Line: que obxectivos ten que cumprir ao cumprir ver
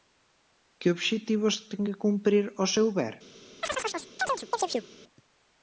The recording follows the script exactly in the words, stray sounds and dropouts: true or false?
false